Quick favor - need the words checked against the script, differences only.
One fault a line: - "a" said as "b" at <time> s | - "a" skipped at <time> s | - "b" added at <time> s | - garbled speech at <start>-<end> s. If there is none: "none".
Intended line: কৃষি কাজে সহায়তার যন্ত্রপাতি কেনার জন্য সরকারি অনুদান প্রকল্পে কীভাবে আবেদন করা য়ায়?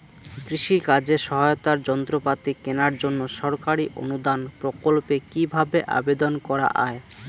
none